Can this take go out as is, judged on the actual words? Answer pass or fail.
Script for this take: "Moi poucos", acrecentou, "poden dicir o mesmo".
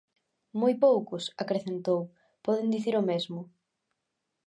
pass